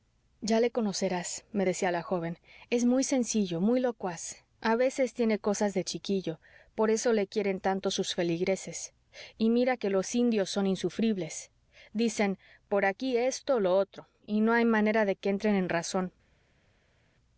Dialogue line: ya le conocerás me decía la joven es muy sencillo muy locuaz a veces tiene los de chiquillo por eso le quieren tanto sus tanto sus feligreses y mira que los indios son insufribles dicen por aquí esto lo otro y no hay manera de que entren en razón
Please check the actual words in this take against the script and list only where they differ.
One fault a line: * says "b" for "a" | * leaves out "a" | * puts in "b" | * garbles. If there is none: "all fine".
* says "cosas" for "los"
* leaves out "tanto sus"